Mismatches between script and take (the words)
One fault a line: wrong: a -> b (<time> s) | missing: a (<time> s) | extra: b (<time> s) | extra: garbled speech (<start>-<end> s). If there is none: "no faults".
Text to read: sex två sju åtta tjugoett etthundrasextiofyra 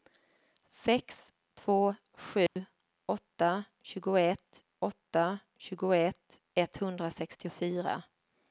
extra: åtta tjugoett (4.8 s)